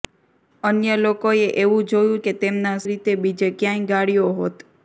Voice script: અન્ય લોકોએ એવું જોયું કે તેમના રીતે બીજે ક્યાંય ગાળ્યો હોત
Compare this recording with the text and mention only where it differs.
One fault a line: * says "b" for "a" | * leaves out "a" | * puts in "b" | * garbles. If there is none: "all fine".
all fine